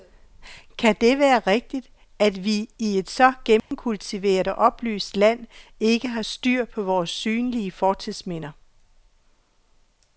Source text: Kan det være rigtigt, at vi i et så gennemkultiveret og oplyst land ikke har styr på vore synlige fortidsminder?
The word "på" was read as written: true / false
true